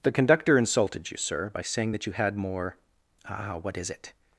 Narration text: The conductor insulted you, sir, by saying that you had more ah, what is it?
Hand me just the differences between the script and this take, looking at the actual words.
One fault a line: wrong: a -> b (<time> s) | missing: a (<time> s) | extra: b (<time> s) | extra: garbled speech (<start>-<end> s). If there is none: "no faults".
no faults